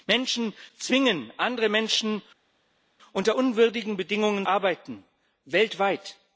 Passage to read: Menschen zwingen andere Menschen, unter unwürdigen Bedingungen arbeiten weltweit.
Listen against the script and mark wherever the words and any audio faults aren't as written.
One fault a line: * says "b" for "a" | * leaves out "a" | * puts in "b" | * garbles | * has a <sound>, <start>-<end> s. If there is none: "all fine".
all fine